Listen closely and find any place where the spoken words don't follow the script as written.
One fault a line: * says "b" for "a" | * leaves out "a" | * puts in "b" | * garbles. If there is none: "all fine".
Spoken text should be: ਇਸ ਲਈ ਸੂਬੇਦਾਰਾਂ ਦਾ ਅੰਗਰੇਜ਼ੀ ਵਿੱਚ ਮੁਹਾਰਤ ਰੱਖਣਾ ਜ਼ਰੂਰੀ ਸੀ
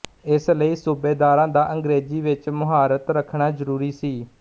all fine